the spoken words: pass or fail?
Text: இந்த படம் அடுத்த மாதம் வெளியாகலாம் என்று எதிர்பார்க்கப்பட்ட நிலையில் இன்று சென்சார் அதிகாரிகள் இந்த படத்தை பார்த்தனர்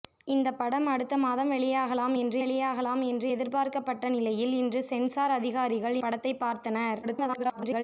fail